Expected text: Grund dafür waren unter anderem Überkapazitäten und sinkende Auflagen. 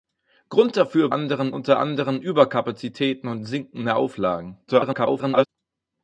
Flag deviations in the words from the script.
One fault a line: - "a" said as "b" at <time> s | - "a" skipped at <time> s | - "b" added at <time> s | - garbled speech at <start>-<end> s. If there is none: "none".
- "waren" said as "anderem" at 1.1 s
- garbled speech at 4.7-5.5 s